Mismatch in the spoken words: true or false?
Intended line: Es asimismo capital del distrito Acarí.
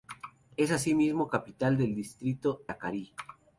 false